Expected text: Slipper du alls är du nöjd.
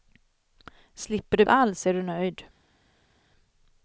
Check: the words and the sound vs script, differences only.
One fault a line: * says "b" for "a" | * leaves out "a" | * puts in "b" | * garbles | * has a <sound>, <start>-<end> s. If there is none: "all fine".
all fine